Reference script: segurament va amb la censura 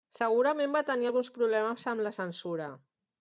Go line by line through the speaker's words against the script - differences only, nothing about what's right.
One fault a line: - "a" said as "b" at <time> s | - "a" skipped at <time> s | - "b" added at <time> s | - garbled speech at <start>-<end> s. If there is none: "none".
- "tenir alguns problemes" added at 0.9 s